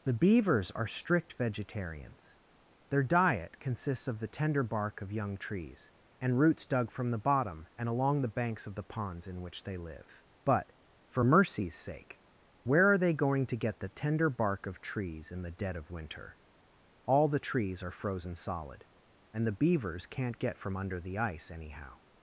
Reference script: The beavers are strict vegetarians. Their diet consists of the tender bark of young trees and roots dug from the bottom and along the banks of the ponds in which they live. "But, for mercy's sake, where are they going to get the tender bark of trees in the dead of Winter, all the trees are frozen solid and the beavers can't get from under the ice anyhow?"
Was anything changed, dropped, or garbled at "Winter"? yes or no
no